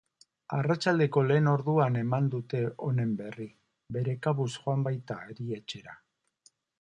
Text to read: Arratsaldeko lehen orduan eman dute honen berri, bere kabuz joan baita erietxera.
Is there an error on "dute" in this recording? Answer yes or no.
no